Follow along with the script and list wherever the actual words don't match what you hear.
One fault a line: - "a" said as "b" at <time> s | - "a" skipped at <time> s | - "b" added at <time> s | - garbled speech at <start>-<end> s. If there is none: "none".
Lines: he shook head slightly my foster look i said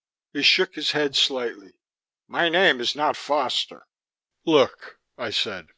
- "his" added at 0.7 s
- "name is not" added at 2.5 s